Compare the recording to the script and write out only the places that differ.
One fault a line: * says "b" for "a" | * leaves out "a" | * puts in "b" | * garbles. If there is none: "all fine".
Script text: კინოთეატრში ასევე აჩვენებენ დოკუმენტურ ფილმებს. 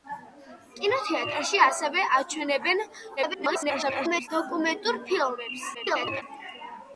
* garbles
* garbles